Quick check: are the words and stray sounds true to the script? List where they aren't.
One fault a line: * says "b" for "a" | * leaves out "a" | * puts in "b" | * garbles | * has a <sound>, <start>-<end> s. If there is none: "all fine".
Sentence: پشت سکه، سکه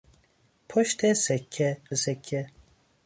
all fine